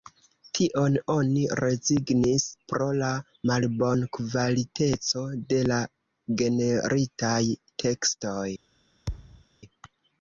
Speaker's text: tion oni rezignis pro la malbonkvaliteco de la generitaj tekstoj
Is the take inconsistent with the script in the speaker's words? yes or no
no